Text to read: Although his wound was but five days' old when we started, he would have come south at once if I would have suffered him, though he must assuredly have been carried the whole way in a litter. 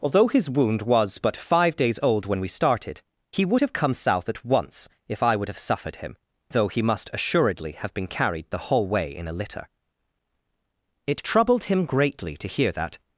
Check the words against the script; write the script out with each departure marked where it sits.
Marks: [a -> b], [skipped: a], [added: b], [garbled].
Although his wound was but five days' old when we started, he would have come south at once if I would have suffered him, though he must assuredly have been carried the whole way in a litter. [added: It troubled him greatly to hear that]